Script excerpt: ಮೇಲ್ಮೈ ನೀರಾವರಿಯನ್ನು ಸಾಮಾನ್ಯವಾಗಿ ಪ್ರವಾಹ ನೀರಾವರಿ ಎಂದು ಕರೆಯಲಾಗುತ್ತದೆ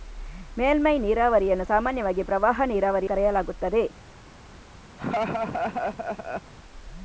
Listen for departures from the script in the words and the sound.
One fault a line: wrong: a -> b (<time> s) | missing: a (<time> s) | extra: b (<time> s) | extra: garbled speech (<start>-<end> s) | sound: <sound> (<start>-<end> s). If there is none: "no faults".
missing: ಎಂದು (3.1 s)
sound: laugh (5.0-6.5 s)